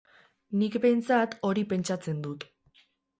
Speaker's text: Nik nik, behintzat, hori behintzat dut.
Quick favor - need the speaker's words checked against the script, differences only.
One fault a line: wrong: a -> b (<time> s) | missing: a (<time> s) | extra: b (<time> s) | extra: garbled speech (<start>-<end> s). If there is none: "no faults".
missing: nik (0.8 s)
wrong: behintzat -> pentsatzen (1.7 s)